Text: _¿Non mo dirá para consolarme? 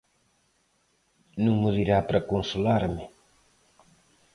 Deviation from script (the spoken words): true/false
false